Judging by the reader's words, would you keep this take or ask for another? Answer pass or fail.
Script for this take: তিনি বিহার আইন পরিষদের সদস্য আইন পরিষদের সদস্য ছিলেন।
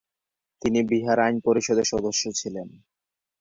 fail